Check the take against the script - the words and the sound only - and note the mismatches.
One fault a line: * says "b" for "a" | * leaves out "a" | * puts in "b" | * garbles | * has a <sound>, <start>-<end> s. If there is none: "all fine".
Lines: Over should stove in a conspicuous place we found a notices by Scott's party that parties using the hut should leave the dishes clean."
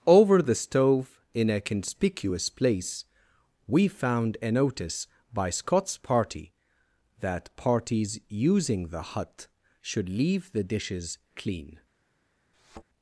* says "the" for "should"
* says "notice" for "notices"
* has a thud, 12.5-12.8 s